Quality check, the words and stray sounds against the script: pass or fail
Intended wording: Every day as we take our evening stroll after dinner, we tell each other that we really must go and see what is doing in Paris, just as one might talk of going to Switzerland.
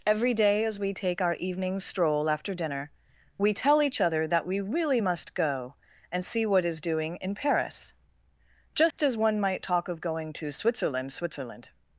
fail